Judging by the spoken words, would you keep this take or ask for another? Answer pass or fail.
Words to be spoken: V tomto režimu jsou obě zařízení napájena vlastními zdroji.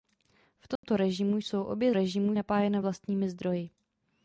fail